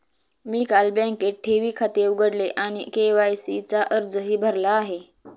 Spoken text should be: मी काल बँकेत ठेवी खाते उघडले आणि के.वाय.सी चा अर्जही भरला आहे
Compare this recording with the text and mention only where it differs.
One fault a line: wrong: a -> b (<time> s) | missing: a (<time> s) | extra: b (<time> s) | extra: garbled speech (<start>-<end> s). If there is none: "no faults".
no faults